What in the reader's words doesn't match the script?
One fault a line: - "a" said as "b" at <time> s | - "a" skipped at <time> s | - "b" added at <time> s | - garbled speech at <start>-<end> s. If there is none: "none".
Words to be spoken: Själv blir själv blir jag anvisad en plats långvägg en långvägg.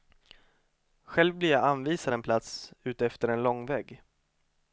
- "själv blir" skipped at 1.5 s
- "långvägg" said as "utefter" at 2.8 s